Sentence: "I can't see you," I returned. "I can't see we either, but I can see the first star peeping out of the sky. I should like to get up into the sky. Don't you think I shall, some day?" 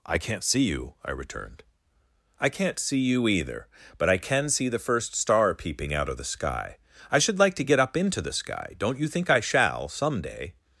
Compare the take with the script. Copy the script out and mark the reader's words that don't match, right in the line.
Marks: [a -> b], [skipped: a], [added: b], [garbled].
"I can't see you," I returned. "I can't see [we -> you] either, but I can see the first star peeping out of the sky. I should like to get up into the sky. Don't you think I shall, some day?"